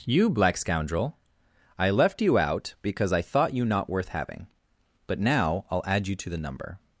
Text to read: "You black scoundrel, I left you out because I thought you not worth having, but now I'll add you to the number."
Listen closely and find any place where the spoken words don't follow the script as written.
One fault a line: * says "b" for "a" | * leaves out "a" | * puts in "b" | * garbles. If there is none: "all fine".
all fine